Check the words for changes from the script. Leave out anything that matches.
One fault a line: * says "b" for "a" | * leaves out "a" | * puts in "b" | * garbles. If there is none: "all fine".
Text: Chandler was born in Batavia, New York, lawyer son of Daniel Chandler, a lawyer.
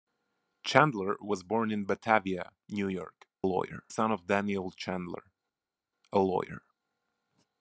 all fine